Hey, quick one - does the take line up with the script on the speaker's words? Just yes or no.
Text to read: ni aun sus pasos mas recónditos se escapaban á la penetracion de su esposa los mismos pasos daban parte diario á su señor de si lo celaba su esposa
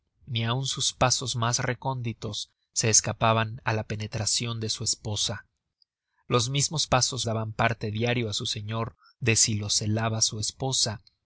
yes